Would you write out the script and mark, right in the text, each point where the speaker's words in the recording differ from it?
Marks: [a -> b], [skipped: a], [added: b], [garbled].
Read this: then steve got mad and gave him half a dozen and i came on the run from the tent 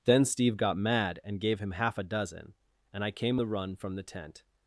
then steve got mad and gave him half a dozen and i came [skipped: on] the run from the tent